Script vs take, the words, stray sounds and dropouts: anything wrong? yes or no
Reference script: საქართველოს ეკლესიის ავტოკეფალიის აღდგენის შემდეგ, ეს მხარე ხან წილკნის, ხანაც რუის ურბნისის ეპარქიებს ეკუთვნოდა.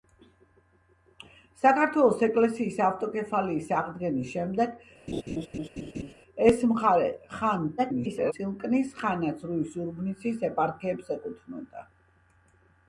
yes